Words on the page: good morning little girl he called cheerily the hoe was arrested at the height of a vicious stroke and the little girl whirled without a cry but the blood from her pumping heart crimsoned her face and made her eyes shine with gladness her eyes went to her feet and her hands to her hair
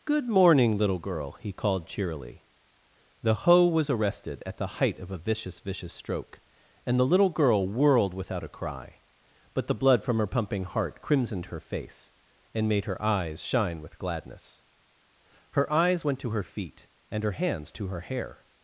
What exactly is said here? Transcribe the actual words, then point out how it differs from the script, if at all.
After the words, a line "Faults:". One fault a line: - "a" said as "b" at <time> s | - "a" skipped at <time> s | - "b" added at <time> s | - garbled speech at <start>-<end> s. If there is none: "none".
good morning little girl he called cheerily the hoe was arrested at the height of a vicious vicious stroke and the little girl whirled without a cry but the blood from her pumping heart crimsoned her face and made her eyes shine with gladness her eyes went to her feet and her hands to her hair
Faults:
- "vicious" added at 5.6 s